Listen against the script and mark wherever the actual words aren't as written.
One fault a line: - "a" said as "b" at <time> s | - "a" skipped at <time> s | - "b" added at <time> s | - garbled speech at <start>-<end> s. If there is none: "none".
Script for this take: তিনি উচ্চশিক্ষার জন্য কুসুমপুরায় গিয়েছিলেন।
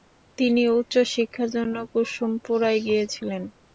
none